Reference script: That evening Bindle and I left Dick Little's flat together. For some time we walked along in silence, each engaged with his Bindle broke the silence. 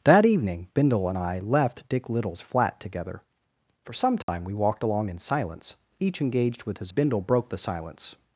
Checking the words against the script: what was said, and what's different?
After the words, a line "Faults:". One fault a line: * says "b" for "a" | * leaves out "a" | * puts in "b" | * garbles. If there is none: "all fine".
That evening Bindle and I left Dick Little's flat together. For some time we walked along in silence, each engaged with his Bindle broke the silence.
Faults:
all fine